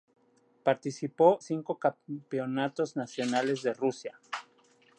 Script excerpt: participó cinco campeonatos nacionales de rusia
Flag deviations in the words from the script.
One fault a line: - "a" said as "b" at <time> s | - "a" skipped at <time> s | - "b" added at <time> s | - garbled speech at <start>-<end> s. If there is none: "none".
none